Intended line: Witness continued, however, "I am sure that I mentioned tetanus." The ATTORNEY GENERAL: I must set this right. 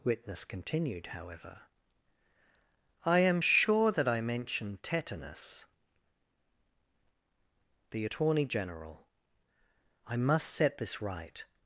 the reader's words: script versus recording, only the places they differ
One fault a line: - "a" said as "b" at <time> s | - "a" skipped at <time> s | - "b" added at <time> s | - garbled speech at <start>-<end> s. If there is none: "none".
none